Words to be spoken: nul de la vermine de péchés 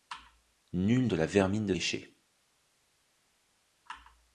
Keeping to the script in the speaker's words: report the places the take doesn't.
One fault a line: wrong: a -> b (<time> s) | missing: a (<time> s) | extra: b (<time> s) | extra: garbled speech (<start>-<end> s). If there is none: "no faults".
no faults